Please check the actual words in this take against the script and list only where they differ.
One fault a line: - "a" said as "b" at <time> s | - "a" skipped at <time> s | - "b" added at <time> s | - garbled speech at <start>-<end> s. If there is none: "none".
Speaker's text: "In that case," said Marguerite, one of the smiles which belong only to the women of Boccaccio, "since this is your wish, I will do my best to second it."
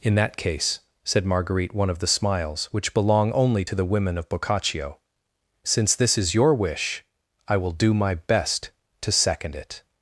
none